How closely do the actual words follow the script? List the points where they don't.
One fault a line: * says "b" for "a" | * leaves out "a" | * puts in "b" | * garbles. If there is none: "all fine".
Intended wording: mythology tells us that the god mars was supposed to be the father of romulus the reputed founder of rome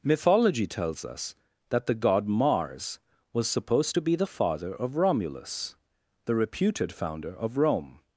all fine